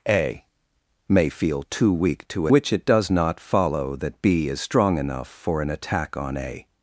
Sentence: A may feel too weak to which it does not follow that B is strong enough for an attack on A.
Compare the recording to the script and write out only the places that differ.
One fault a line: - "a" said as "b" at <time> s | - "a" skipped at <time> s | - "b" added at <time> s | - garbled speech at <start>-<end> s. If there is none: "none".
none